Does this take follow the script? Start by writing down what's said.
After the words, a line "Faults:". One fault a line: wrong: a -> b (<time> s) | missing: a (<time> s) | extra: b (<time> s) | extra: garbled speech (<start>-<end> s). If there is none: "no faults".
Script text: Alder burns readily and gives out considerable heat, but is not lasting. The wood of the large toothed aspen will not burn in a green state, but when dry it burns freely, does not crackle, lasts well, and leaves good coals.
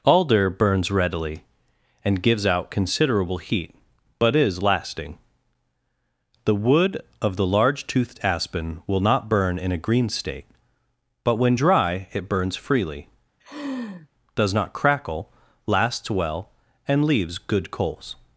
Alder burns readily and gives out considerable heat, but is lasting. The wood of the large toothed aspen will not burn in a green state, but when dry it burns freely, does not crackle, lasts well, and leaves good coals.
Faults:
missing: not (4.6 s)